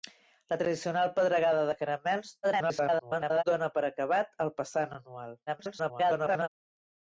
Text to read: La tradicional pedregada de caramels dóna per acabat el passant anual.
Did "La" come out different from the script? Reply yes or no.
no